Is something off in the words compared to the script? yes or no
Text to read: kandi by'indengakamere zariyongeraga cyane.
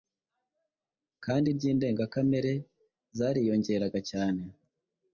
no